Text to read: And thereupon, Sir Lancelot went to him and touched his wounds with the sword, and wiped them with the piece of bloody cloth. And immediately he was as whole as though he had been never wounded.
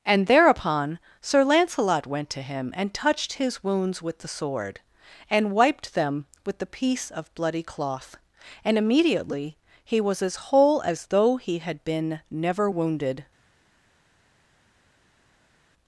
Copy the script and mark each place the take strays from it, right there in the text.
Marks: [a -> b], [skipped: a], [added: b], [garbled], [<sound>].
And thereupon, Sir Lancelot went to him and touched his wounds with the sword, and wiped them with the piece of bloody cloth. And immediately he was as whole as though he had been never wounded.